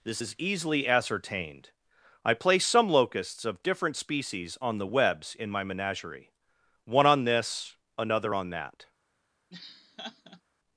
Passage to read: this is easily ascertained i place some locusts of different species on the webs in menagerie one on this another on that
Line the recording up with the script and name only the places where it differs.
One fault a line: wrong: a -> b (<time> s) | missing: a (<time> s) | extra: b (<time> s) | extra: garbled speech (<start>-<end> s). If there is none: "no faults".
extra: my (5.5 s)